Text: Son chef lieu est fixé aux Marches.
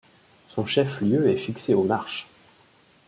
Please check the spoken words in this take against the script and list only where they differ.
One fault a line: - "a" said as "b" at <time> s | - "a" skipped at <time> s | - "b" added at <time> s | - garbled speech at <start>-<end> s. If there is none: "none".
none